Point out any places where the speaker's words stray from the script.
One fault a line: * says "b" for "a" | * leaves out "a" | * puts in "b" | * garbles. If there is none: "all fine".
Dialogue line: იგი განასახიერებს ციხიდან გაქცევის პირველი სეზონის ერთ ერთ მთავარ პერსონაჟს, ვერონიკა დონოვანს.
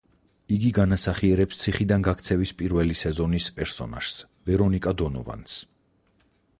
* leaves out "ერთ ერთ მთავარ"